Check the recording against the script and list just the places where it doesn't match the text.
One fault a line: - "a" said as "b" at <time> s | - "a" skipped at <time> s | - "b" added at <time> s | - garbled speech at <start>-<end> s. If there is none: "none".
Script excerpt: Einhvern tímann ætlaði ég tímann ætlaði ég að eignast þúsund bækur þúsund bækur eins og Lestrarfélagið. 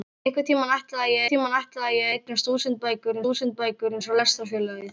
none